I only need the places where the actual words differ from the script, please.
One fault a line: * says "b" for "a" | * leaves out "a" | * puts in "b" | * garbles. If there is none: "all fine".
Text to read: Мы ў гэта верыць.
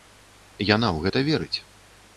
* says "Яна" for "Мы"